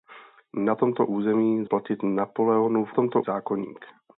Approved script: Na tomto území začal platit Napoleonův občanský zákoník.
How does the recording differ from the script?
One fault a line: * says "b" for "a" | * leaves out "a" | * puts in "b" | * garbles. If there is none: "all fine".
* leaves out "začal"
* says "tomto" for "občanský"